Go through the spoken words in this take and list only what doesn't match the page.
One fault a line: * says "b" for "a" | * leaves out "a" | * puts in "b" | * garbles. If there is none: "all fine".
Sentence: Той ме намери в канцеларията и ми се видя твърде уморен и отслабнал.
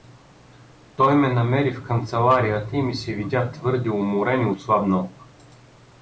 all fine